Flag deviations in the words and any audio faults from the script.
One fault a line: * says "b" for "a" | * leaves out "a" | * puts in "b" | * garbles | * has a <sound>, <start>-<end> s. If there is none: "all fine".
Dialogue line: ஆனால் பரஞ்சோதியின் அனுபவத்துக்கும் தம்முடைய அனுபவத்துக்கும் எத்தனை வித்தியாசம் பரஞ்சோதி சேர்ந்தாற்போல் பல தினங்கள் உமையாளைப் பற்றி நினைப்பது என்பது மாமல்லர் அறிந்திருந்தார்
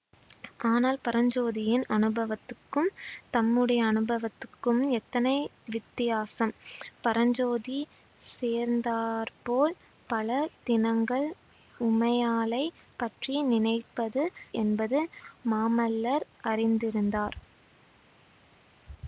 all fine